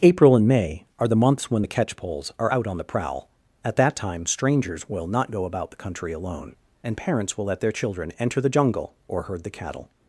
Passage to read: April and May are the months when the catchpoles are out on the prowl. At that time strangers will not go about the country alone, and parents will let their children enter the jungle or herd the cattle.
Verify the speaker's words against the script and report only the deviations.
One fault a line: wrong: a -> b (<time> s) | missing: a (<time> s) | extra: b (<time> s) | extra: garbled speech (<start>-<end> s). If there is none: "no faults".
no faults